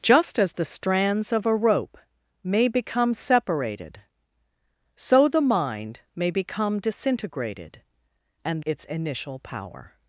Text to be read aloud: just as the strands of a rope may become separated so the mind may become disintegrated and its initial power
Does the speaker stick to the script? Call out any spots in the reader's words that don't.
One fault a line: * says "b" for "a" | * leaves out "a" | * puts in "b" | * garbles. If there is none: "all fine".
all fine